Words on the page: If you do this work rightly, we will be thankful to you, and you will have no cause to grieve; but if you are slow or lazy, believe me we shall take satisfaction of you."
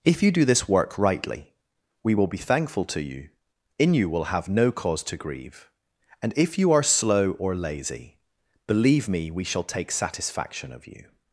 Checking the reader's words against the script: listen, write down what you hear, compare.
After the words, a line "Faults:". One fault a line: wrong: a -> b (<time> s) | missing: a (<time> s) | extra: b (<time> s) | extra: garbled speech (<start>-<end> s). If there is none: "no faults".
If you do this work rightly, we will be thankful to you, in you will have no cause to grieve; and if you are slow or lazy, believe me we shall take satisfaction of you."
Faults:
wrong: and -> in (3.8 s)
wrong: but -> and (6.2 s)